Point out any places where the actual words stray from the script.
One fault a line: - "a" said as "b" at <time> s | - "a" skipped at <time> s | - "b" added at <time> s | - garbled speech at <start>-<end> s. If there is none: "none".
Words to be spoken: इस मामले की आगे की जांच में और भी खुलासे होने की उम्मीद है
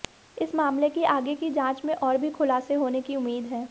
none